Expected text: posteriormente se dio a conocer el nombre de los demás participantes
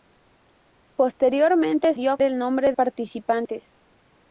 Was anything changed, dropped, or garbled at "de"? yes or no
yes